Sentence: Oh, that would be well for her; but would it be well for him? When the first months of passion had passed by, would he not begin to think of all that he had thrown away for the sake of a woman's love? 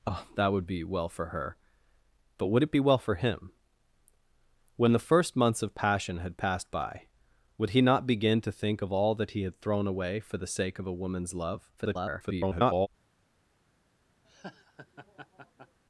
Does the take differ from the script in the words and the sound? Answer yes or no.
yes